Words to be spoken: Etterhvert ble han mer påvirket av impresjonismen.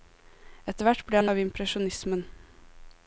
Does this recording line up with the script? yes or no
no